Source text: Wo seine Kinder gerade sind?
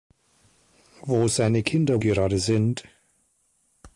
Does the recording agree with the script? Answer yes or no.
yes